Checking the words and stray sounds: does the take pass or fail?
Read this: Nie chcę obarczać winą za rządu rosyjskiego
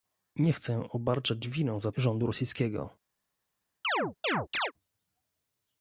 fail